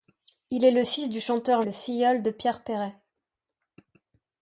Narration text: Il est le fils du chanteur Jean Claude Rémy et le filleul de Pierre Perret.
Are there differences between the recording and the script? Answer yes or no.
yes